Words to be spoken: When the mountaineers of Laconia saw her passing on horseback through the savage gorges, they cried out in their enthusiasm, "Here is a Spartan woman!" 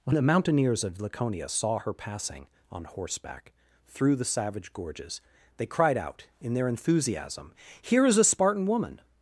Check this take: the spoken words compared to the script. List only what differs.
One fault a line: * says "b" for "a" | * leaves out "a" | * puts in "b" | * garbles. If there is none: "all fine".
all fine